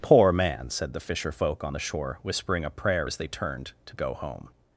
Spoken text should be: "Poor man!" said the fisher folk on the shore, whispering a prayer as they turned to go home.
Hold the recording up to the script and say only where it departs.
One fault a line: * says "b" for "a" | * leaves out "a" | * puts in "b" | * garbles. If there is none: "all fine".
all fine